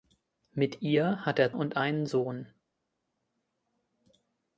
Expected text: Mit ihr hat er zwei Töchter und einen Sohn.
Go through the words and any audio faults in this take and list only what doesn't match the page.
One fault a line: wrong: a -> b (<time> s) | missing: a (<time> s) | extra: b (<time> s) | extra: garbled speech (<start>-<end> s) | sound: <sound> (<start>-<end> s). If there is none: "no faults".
missing: zwei Töchter (1.5 s)